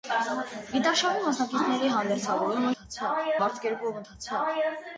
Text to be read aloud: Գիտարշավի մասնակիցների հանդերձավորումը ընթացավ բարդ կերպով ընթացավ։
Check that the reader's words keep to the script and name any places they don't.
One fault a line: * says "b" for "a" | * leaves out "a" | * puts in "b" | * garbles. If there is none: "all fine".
all fine